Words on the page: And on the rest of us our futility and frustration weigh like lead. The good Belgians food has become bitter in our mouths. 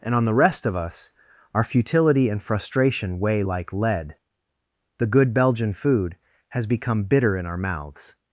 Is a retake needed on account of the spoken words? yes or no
yes